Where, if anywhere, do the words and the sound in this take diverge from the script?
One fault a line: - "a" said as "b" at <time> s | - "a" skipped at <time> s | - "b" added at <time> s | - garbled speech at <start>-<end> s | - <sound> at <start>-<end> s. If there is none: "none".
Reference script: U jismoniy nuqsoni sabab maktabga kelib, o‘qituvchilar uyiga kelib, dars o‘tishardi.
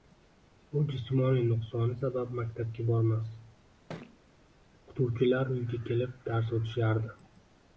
- "kelib" said as "bormas" at 2.9 s
- thud at 3.9-4.2 s